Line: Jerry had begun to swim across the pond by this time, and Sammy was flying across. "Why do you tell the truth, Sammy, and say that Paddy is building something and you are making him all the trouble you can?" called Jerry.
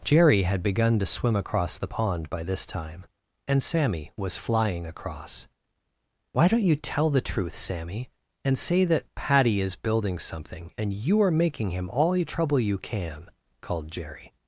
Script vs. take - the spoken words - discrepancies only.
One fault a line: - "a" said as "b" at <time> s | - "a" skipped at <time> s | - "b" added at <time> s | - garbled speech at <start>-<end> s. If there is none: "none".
- "do" said as "don't" at 6.5 s